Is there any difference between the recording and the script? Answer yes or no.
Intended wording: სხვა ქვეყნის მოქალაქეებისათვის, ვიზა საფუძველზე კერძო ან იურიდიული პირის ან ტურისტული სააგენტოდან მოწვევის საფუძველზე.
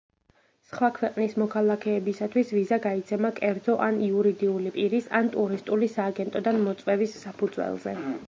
yes